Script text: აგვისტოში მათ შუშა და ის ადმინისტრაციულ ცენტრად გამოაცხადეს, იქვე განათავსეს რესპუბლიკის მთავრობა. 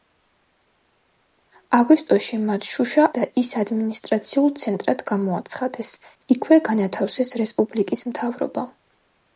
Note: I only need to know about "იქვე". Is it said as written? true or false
true